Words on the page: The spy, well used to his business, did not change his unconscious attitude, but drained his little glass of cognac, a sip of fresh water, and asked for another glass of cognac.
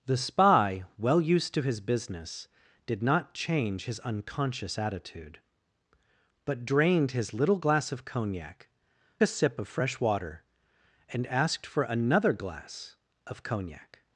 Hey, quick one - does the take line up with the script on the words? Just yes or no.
yes